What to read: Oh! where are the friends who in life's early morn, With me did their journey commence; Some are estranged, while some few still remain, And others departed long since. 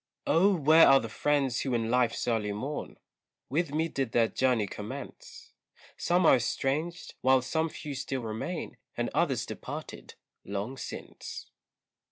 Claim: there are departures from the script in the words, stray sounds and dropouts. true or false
false